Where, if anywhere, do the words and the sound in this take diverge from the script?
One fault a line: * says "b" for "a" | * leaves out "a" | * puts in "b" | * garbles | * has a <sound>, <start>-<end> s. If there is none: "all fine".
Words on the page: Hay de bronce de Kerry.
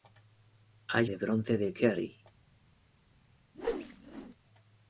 * has a whoosh, 3.5-4.4 s